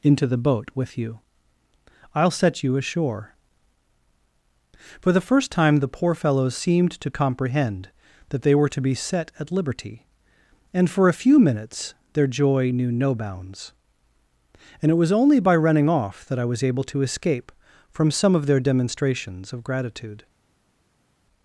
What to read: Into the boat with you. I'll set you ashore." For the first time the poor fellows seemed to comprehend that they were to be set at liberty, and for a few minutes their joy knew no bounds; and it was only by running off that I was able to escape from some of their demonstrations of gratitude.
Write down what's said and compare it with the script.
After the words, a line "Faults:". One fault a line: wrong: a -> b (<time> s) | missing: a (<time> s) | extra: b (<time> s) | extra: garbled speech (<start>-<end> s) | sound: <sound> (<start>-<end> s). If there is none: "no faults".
Into the boat with you. I'll set you ashore." For the first time the poor fellows seemed to comprehend that they were to be set at liberty, and for a few minutes their joy knew no bounds; and it was only by running off that I was able to escape from some of their demonstrations of gratitude.
Faults:
no faults